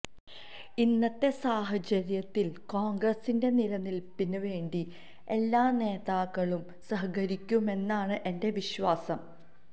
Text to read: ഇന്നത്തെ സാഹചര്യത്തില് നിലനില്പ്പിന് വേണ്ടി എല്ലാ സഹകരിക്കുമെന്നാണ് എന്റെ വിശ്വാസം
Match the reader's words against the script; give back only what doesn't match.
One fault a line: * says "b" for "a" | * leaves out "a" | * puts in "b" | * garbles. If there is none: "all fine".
* puts in "കോണ്ഗ്രസിന്റെ"
* puts in "നേതാക്കളും"